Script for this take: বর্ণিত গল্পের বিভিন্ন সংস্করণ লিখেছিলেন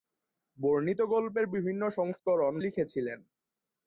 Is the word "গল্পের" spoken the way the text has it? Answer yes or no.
yes